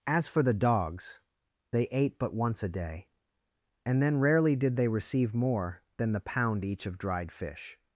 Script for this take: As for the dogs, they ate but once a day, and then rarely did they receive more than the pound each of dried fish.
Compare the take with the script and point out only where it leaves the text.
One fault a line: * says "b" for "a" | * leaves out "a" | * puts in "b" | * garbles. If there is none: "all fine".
all fine